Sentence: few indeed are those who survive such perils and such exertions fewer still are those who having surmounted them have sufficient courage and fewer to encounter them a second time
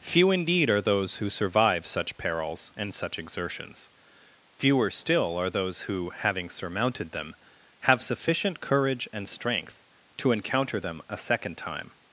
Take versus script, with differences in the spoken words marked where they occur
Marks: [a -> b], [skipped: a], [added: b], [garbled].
few indeed are those who survive such perils and such exertions fewer still are those who having surmounted them have sufficient courage and [fewer -> strength] to encounter them a second time